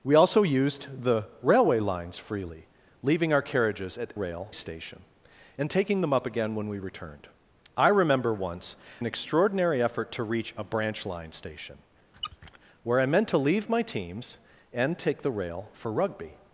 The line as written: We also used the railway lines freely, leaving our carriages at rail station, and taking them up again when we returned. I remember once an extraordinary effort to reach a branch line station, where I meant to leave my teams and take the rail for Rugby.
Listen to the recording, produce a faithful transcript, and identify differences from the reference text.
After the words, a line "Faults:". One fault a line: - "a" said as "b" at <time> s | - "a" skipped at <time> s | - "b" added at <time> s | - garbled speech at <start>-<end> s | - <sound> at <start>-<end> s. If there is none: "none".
We also used the railway lines freely, leaving our carriages at rail station, and taking them up again when we returned. I remember once an extraordinary effort to reach a branch line station, where I meant to leave my teams and take the rail for Rugby.
Faults:
- squeak at 12.1-12.6 s